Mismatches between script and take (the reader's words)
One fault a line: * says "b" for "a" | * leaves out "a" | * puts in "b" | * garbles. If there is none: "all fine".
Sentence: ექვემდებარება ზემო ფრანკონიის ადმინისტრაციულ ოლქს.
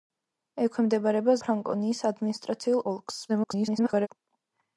* leaves out "ზემო"
* garbles